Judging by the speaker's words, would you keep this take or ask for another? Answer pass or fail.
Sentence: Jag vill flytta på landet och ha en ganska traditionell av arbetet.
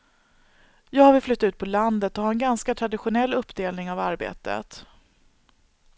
fail